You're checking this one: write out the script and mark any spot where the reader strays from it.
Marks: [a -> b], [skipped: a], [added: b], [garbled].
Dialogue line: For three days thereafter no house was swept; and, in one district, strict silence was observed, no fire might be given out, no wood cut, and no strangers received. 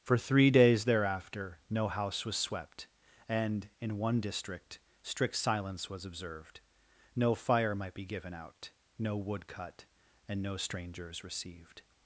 For three days thereafter no house was swept; and, in one district, strict silence was observed, no fire might be given out, no wood cut, and no strangers received.